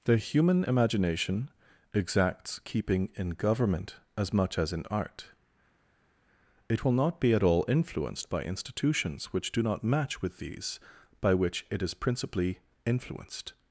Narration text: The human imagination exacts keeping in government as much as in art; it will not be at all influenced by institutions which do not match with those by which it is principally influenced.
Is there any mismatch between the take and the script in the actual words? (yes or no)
yes